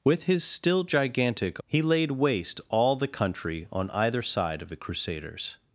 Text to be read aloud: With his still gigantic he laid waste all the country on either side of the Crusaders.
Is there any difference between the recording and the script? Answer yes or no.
no